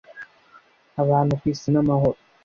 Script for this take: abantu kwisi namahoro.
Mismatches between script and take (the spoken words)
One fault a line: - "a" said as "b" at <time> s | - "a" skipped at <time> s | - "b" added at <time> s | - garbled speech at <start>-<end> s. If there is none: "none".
none